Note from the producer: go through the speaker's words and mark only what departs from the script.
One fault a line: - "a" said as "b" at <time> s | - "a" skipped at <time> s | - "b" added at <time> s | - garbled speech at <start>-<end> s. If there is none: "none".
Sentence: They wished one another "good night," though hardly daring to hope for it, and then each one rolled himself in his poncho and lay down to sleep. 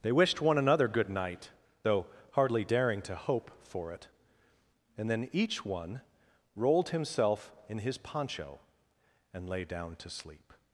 none